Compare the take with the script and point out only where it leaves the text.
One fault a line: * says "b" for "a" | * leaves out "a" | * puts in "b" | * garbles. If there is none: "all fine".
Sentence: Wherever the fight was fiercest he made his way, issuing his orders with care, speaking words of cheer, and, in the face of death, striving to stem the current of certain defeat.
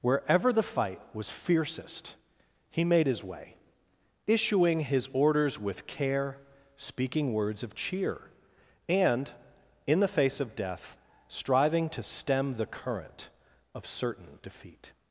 all fine